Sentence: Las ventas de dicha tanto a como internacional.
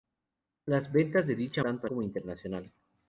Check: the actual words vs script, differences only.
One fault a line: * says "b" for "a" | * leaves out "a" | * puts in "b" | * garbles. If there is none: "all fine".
all fine